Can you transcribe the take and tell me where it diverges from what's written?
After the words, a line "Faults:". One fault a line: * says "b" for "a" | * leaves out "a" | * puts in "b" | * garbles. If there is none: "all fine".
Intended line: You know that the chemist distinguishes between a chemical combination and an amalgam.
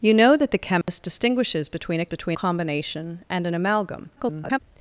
You know that the chemist distinguishes between a between combination and an amalgam. [garbled]
Faults:
* says "between" for "chemical"
* garbles